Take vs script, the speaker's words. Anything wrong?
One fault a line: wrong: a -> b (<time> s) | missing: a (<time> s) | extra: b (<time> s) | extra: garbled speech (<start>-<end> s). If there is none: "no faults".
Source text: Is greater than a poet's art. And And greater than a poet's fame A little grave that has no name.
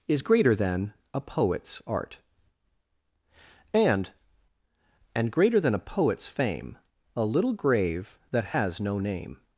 no faults